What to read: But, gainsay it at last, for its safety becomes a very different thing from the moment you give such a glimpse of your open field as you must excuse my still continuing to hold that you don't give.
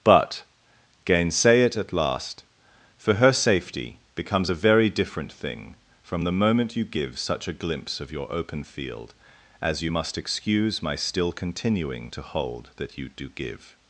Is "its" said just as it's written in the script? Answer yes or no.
no